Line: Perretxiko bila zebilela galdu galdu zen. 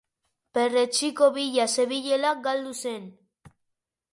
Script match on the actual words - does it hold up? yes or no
no